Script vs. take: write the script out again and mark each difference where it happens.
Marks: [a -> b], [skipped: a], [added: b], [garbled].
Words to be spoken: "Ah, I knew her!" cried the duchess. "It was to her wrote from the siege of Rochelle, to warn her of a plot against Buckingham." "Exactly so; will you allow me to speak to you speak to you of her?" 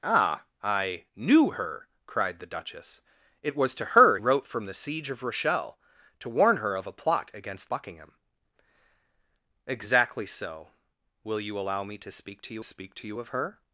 "Ah, I knew her!" cried the duchess. "It was to her wrote from the siege of Rochelle, to warn her of a plot against Buckingham." "Exactly so; will you allow me to speak to you speak to you of her?"